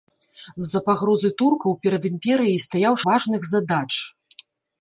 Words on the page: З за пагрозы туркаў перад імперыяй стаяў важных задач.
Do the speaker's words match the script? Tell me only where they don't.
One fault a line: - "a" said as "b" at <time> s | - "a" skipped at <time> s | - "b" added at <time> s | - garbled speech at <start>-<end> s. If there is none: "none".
none